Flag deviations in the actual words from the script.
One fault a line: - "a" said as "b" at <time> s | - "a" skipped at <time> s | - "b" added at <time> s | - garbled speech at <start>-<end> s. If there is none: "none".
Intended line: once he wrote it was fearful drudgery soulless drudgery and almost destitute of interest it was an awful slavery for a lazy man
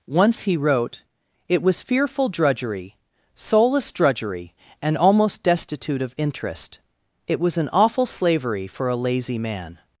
none